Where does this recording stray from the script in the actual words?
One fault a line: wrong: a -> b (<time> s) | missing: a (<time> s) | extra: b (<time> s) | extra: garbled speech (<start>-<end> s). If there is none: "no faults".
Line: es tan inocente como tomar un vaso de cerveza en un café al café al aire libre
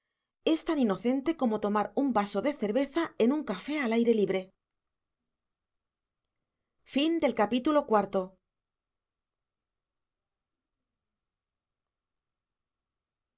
missing: café al (3.9 s)